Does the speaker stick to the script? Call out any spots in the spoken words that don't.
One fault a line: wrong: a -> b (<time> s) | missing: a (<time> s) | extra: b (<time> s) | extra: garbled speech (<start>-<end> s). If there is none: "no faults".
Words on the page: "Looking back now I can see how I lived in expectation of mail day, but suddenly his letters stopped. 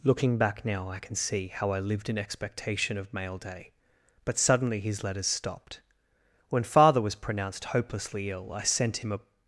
extra: When father was pronounced hopelessly ill I sent him a (6.5 s)